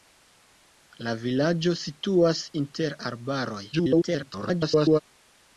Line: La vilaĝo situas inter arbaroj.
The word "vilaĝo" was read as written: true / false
true